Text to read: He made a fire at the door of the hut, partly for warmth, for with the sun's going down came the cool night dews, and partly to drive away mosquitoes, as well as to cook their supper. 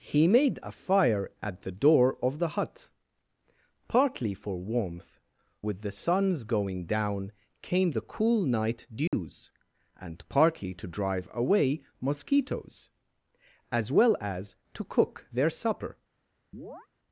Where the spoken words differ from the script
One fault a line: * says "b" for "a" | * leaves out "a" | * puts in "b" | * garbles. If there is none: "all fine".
* leaves out "for"